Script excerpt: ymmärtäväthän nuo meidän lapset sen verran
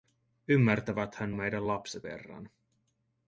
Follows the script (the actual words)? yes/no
no